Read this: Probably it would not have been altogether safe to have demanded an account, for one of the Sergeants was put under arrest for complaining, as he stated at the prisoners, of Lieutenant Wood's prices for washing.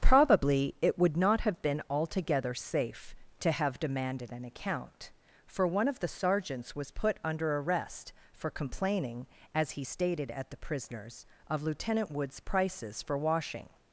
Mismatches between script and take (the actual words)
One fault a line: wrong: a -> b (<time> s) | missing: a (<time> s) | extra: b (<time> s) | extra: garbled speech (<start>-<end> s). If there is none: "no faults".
no faults